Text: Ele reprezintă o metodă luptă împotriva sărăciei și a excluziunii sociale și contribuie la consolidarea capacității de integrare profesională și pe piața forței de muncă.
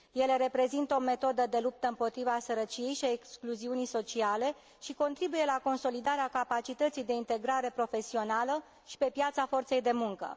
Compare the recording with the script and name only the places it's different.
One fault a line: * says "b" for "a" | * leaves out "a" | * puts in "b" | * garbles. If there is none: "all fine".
* puts in "de"